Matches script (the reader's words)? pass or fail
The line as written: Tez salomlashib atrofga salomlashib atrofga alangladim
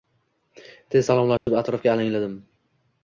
fail